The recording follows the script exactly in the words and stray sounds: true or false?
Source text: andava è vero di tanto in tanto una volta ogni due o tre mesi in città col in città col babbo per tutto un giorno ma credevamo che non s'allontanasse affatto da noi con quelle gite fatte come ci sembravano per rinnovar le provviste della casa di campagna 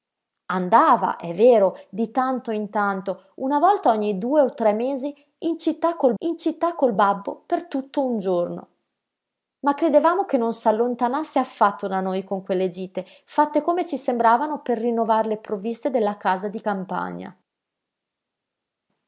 true